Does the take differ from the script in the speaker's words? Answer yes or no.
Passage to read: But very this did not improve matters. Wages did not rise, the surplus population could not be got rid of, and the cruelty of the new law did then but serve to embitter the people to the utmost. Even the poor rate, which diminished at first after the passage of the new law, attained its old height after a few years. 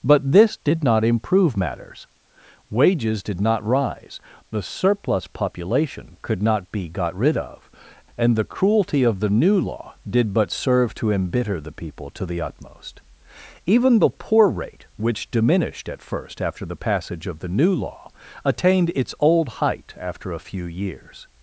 yes